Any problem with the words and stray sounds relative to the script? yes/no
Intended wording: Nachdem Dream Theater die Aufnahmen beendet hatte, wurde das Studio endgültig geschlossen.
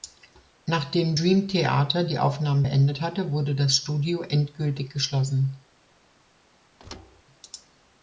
yes